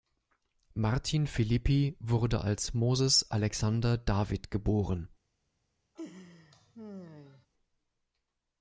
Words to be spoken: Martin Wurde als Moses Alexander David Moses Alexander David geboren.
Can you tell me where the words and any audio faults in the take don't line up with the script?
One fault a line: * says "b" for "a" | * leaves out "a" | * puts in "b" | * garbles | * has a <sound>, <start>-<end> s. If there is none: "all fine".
* puts in "Philippi"
* leaves out "Moses Alexander David"
* has a laugh, 5.9-7.5 s